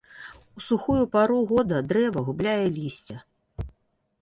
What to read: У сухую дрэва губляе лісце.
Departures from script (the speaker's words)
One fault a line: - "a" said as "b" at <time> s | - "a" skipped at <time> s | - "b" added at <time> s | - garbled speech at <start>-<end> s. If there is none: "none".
- "пару года" added at 1.2 s